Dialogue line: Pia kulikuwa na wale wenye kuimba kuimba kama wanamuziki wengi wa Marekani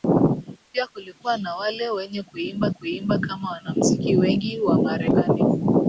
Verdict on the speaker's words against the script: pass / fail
pass